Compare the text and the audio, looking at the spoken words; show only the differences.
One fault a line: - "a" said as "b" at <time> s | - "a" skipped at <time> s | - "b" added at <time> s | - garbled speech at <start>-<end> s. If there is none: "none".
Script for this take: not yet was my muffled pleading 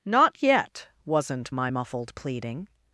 - "was" said as "wasn't" at 1.1 s